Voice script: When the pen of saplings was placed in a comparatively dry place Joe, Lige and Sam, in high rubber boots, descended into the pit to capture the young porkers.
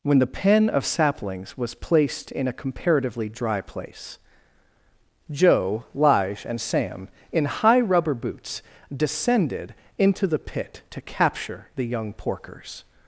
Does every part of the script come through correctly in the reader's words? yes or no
yes